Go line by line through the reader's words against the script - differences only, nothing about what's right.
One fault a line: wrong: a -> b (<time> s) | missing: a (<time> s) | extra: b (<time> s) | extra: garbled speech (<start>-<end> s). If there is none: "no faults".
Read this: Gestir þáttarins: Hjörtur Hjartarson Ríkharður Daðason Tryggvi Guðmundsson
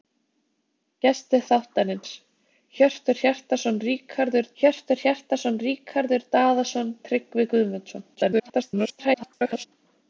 extra: Hjörtur Hjartarson Ríkharður (4.6 s)
extra: garbled speech (8.1-9.7 s)